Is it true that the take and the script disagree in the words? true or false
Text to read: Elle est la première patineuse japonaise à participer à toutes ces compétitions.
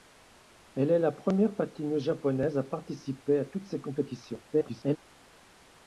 true